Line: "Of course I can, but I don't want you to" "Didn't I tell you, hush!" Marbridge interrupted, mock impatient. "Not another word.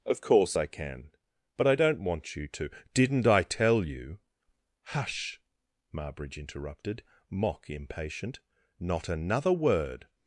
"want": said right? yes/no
yes